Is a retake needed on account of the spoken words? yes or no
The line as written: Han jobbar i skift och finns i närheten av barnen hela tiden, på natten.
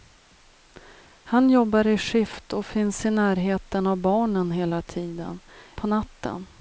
no